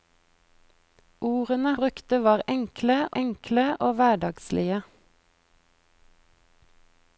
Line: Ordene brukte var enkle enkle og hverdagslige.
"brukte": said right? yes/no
yes